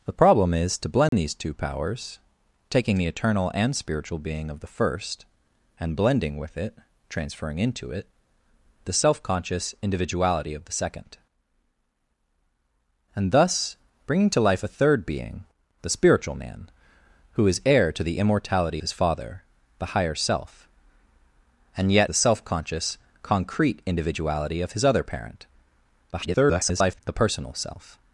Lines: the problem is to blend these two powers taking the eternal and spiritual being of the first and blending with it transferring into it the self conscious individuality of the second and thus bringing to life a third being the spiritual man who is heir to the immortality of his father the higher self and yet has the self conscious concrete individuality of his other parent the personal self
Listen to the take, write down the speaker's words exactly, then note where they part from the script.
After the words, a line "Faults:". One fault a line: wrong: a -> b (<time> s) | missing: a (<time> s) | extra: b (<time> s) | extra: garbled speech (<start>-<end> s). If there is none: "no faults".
the problem is to blend these two powers taking the eternal and spiritual being of the first and blending with it transferring into it the self conscious individuality of the second and thus bringing to life a third being the spiritual man who is heir to the immortality his father the higher self and yet the self conscious concrete individuality of his other parent [garbled] the personal self
Faults:
missing: of (18.8 s)
missing: has (22.1 s)
extra: garbled speech (26.1-27.0 s)